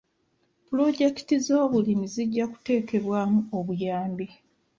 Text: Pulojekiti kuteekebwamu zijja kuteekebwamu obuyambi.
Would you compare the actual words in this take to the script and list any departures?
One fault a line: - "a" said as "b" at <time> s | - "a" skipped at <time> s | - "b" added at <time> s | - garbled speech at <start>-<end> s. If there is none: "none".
- "kuteekebwamu" said as "z'obulimi" at 1.4 s